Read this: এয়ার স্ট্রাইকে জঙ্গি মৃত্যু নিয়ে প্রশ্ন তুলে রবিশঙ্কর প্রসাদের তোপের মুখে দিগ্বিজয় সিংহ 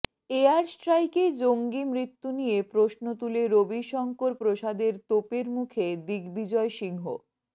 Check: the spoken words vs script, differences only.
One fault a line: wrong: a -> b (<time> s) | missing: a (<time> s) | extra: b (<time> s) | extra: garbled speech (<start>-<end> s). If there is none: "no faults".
no faults